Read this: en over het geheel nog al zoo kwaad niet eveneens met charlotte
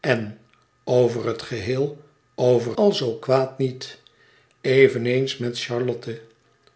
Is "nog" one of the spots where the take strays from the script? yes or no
yes